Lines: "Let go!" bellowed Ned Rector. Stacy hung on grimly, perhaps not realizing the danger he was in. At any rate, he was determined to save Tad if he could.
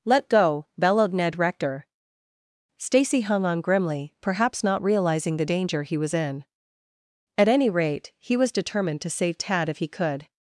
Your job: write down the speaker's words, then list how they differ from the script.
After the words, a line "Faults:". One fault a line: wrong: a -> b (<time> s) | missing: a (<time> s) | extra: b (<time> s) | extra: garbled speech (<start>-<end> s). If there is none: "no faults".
"Let go!" bellowed Ned Rector. Stacy hung on grimly, perhaps not realizing the danger he was in. At any rate, he was determined to save Tad if he could.
Faults:
no faults